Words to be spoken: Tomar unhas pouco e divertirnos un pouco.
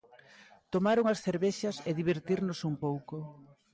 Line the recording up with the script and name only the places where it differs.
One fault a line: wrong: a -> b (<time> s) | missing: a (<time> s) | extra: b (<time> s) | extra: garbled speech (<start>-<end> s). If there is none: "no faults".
wrong: pouco -> cervexas (1.2 s)